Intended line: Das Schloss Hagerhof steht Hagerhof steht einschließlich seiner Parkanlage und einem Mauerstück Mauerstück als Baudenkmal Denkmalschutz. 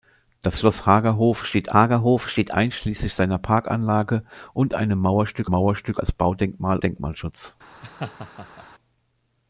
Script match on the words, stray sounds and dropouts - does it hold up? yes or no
no